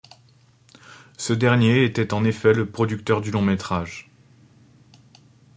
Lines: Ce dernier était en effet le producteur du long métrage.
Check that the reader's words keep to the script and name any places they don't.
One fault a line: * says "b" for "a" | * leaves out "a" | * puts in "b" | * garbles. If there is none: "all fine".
all fine